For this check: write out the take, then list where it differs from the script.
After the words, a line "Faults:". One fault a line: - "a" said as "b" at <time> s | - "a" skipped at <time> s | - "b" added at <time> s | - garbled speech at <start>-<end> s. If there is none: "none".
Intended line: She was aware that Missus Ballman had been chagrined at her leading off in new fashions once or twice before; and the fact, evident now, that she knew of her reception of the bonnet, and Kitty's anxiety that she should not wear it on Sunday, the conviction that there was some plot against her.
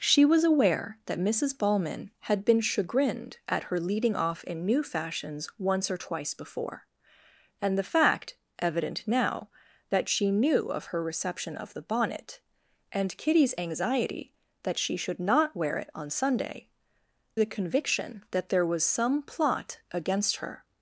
She was aware that Missus Ballman had been chagrined at her leading off in new fashions once or twice before; and the fact, evident now, that she knew of her reception of the bonnet, and Kitty's anxiety that she should not wear it on Sunday, the conviction that there was some plot against her.
Faults:
none